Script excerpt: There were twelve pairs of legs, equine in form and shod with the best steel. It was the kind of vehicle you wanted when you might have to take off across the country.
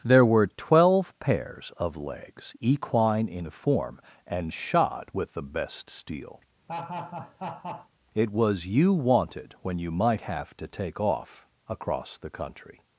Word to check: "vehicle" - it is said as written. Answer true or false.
false